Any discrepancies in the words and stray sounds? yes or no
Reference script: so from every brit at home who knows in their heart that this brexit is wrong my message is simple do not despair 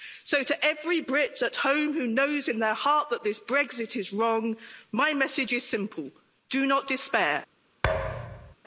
yes